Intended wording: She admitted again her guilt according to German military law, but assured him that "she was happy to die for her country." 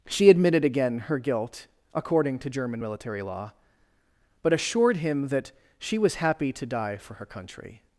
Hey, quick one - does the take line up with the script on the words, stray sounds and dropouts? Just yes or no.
yes